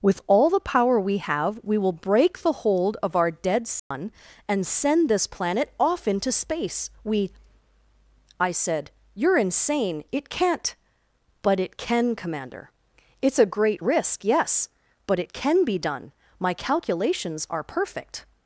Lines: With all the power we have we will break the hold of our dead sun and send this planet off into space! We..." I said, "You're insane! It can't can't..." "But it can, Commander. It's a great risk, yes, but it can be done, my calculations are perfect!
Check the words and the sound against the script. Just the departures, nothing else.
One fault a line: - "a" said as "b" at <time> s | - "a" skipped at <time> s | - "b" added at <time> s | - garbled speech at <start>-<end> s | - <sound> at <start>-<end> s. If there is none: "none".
- dropout at 3.8-3.9 s
- "can't" skipped at 10.8 s